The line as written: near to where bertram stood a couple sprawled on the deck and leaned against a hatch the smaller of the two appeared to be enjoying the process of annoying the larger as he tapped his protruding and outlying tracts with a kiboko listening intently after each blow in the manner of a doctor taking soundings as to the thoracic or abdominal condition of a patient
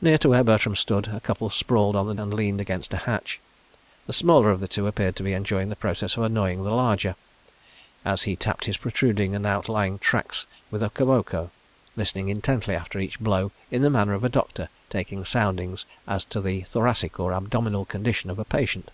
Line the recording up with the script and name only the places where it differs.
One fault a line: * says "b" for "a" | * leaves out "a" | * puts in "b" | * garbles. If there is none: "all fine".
* leaves out "deck"